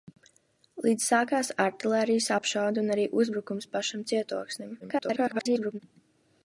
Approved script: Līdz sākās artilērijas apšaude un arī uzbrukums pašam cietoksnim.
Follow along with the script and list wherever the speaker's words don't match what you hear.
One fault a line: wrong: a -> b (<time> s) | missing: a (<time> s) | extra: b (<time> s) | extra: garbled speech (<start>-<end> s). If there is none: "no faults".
extra: garbled speech (4.8-5.8 s)